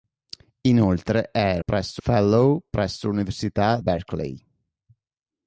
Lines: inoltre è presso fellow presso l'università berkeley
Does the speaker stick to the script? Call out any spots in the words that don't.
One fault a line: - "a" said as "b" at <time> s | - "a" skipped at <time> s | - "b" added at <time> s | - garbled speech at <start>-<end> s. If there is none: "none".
none